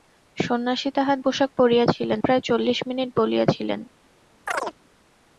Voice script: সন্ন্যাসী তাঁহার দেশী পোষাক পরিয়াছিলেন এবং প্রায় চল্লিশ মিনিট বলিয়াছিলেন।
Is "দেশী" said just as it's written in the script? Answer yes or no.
no